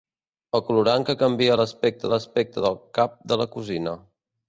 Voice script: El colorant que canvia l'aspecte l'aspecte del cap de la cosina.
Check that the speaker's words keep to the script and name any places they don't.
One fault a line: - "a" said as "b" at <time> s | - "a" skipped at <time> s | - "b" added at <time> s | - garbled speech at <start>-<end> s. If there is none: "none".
none